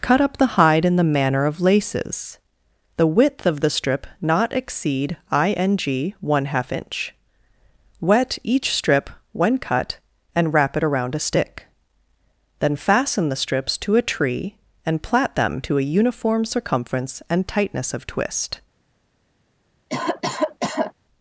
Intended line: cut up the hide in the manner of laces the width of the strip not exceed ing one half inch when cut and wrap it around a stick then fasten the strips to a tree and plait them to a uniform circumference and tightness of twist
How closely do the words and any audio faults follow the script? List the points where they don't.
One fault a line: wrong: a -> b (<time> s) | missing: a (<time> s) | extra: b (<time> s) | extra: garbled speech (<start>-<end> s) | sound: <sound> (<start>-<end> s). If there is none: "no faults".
extra: wet each strip (8.0 s)
sound: cough (19.9-20.9 s)